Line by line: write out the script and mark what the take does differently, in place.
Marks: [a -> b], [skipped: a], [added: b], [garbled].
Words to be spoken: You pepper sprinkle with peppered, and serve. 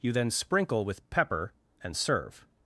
You [pepper -> then] sprinkle with [peppered, -> pepper] and serve.